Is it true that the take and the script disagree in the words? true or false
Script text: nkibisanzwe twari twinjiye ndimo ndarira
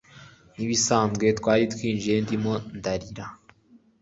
false